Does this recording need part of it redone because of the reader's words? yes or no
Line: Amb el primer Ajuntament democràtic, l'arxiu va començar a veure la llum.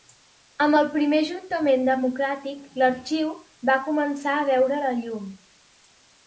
no